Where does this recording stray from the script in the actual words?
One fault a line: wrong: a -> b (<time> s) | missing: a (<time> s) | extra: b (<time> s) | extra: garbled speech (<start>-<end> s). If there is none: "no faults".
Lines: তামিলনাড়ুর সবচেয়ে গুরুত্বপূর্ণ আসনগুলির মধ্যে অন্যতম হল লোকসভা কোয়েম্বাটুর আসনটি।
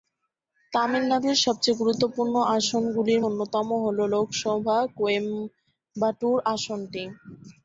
missing: মধ্যে (3.2 s)